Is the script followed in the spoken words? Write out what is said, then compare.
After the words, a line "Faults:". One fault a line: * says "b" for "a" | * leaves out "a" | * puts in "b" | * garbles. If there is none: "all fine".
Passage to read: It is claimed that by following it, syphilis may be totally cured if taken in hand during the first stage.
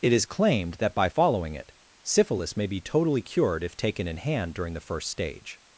It is claimed that by following it, syphilis may be totally cured if taken in hand during the first stage.
Faults:
all fine